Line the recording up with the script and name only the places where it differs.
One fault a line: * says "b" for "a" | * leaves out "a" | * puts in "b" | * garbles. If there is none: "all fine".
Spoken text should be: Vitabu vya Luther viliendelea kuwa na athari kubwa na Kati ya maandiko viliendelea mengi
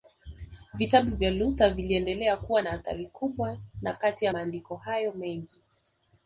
* says "hayo" for "viliendelea"